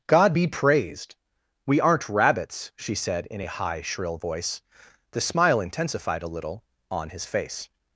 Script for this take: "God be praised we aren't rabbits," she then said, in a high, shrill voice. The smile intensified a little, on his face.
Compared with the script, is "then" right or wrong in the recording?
wrong